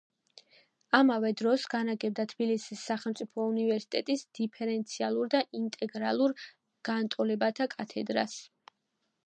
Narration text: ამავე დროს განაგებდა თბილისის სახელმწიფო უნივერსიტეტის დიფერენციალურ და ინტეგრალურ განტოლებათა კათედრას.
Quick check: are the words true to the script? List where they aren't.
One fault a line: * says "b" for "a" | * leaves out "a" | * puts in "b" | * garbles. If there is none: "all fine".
all fine